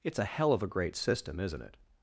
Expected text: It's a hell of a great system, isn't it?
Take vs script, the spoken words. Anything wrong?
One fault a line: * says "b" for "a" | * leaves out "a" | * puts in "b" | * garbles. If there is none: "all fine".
all fine